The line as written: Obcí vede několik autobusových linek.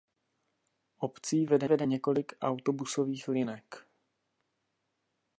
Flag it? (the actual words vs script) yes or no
yes